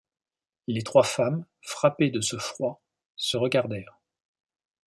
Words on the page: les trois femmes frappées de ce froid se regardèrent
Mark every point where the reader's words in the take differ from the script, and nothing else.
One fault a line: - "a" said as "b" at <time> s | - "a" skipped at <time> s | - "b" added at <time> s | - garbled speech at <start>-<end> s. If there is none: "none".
none